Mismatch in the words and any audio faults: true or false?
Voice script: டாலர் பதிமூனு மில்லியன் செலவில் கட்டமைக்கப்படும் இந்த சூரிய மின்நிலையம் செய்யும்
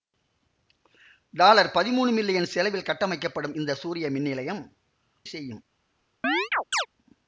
true